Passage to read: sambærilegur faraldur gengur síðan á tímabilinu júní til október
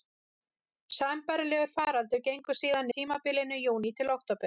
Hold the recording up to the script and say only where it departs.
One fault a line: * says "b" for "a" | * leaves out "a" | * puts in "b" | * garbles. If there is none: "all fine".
all fine